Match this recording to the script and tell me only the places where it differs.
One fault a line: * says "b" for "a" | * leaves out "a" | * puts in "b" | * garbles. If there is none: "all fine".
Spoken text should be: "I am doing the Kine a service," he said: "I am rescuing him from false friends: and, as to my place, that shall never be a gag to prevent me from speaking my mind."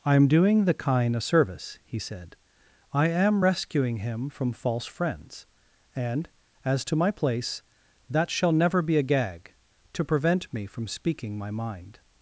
all fine